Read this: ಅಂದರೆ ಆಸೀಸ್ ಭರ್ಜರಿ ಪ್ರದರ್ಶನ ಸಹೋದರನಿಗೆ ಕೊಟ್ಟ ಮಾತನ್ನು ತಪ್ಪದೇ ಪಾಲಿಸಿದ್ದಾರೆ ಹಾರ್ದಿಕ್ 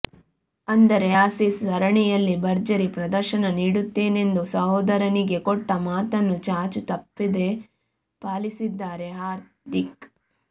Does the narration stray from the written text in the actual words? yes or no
yes